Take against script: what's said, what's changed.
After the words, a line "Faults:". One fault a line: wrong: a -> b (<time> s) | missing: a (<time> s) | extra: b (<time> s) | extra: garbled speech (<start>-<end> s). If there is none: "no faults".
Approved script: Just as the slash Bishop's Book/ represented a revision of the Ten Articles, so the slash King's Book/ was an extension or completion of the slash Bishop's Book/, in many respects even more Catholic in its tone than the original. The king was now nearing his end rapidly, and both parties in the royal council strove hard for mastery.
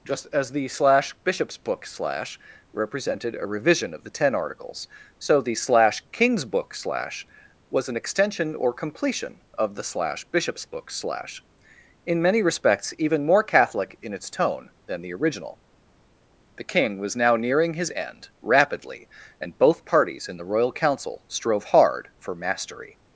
Just as the slash Bishop's Book/ slash represented a revision of the Ten Articles, so the slash King's Book/ slash was an extension or completion of the slash Bishop's Book/, slash in many respects even more Catholic in its tone than the original. The king was now nearing his end rapidly, and both parties in the royal council strove hard for mastery.
Faults:
extra: slash (1.9 s)
extra: slash (6.7 s)
extra: slash (10.9 s)